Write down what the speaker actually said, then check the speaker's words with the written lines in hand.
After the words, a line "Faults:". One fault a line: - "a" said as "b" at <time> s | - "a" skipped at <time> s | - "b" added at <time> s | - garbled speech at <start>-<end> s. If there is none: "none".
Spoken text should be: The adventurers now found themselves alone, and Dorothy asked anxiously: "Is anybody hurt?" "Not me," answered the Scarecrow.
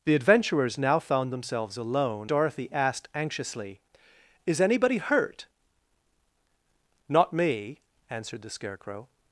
The adventurers now found themselves alone, Dorothy asked anxiously: "Is anybody hurt?" "Not me," answered the Scarecrow.
Faults:
- "and" skipped at 2.3 s